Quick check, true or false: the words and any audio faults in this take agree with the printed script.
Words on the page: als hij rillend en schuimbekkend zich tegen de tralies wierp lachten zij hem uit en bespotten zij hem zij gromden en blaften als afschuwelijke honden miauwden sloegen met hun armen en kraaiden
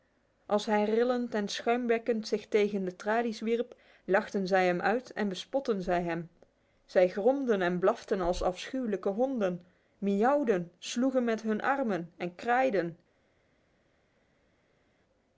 true